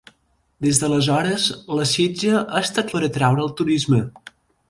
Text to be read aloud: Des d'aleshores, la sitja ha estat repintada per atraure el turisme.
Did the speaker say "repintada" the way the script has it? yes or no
no